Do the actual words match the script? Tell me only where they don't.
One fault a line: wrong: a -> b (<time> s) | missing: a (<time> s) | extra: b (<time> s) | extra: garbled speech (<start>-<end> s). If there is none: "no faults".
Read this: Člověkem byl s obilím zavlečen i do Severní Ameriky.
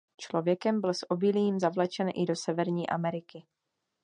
no faults